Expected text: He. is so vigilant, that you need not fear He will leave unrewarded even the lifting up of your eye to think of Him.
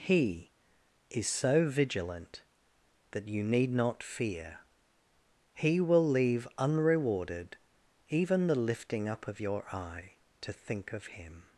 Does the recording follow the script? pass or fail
pass